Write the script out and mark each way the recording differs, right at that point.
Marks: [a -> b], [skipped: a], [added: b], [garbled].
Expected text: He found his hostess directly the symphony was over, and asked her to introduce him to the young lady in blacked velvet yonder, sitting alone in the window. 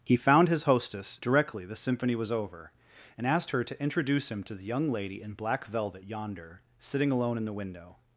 He found his hostess directly the symphony was over, and asked her to introduce him to the young lady in [blacked -> black] velvet yonder, sitting alone in the window.